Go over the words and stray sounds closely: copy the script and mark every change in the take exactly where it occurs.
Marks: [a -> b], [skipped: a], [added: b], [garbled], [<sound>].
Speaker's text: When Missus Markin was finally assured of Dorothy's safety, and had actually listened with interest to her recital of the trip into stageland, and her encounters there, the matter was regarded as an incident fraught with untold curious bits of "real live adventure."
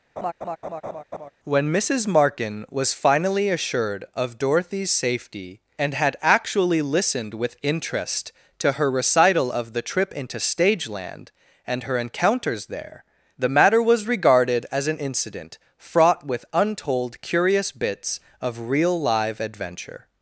[laugh] When Missus Markin was finally assured of Dorothy's safety, and had actually listened with interest to her recital of the trip into stageland, and her encounters there, the matter was regarded as an incident fraught with untold curious bits of "real live adventure."